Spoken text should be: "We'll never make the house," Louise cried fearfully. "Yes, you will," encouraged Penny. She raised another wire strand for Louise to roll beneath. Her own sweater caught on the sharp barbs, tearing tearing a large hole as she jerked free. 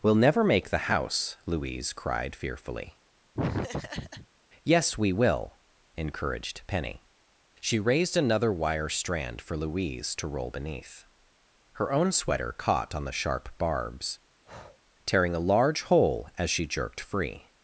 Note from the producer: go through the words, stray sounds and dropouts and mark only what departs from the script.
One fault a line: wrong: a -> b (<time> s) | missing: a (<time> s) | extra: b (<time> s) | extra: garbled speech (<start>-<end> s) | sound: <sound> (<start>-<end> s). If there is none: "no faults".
sound: laugh (3.3-4.3 s)
wrong: you -> we (5.0 s)
sound: breath (14.4-14.8 s)
missing: tearing (15.3 s)